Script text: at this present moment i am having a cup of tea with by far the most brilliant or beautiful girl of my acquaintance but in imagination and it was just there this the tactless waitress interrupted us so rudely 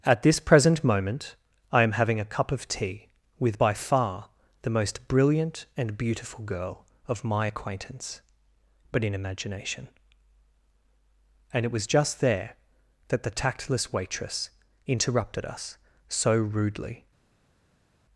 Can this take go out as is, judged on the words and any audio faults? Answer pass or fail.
fail